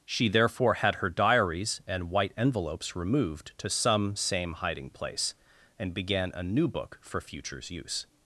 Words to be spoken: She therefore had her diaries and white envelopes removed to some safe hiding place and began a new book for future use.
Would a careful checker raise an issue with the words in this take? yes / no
yes